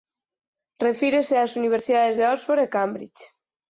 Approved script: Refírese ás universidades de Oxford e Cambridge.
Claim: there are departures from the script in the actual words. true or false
false